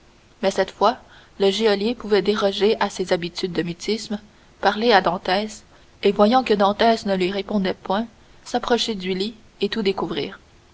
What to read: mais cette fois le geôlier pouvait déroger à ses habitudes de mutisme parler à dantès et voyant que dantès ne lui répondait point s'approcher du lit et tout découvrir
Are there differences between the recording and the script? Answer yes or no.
no